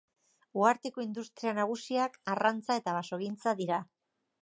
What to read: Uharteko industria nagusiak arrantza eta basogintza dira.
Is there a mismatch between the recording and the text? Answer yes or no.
no